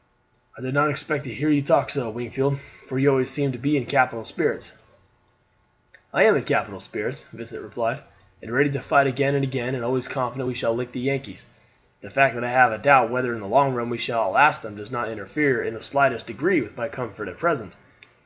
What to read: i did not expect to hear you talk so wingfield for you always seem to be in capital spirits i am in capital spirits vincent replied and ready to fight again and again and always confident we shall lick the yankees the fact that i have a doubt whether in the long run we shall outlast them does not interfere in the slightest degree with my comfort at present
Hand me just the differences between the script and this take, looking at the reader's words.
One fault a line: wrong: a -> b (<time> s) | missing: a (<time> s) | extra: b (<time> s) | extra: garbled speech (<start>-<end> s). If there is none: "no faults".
no faults